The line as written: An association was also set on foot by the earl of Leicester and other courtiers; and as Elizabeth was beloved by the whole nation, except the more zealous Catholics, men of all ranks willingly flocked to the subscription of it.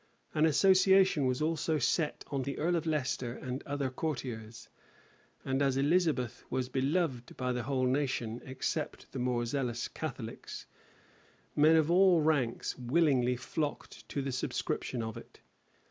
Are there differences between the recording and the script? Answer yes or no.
yes